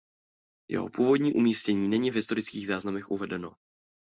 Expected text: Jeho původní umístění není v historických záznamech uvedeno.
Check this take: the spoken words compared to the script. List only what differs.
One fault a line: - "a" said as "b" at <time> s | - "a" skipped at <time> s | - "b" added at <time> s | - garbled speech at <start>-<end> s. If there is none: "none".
none